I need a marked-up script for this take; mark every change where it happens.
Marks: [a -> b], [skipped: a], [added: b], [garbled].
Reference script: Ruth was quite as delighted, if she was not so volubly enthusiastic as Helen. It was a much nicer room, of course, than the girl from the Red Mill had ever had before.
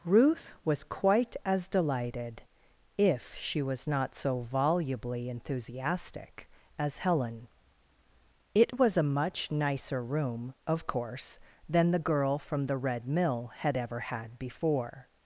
Ruth was quite as delighted, if she was not so volubly enthusiastic as Helen. It was a much nicer room, of course, than the girl from the Red Mill had ever had before.